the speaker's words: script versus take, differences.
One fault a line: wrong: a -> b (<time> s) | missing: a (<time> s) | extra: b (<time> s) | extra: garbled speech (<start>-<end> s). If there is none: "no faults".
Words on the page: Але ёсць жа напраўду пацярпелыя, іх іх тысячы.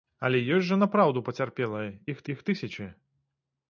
no faults